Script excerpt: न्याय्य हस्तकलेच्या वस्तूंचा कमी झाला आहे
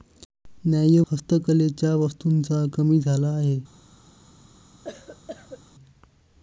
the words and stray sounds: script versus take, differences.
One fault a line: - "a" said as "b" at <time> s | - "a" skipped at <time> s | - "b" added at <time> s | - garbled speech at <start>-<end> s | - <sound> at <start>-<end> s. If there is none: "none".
- cough at 4.8-5.6 s